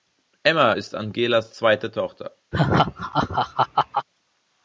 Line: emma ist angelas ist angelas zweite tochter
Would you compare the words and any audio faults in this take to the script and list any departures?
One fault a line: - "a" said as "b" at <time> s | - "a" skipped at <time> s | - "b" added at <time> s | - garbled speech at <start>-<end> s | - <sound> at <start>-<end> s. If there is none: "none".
- "ist angelas" skipped at 1.5 s
- laugh at 2.5-4.1 s